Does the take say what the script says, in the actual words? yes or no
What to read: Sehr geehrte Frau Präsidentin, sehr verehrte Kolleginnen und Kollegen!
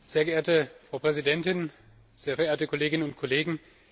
yes